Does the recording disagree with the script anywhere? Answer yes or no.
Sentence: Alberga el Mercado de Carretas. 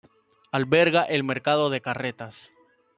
no